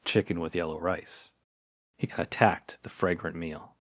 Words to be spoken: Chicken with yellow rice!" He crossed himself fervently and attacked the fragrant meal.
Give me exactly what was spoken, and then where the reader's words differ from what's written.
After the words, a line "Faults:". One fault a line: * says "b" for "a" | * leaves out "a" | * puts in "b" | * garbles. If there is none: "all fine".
Chicken with yellow rice!" He and attacked the fragrant meal.
Faults:
* leaves out "crossed himself fervently"